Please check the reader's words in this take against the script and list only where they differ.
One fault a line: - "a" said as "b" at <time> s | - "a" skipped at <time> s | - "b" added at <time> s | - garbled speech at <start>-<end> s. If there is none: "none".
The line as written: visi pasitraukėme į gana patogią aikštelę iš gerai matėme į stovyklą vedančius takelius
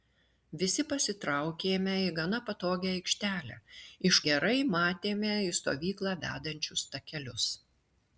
none